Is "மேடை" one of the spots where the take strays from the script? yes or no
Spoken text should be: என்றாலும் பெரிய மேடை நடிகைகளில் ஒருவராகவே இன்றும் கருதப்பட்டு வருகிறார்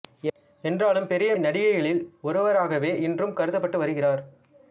yes